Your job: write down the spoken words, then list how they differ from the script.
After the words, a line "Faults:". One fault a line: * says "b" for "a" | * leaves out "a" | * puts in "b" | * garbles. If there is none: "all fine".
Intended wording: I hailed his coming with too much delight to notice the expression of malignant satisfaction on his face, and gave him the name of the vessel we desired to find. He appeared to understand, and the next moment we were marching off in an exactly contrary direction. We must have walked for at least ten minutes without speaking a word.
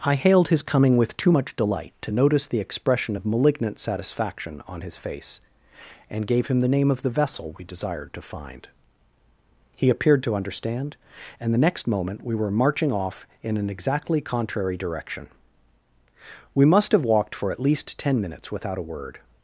I hailed his coming with too much delight to notice the expression of malignant satisfaction on his face, and gave him the name of the vessel we desired to find. He appeared to understand, and the next moment we were marching off in an exactly contrary direction. We must have walked for at least ten minutes without a word.
Faults:
* leaves out "speaking"